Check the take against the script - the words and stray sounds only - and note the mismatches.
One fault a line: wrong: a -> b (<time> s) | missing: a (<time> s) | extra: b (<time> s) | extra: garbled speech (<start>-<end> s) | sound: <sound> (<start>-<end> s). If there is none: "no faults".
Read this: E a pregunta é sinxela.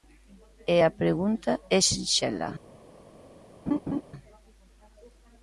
sound: laugh (3.7-4.0 s)